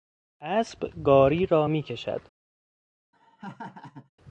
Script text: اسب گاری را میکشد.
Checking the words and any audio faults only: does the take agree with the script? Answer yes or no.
no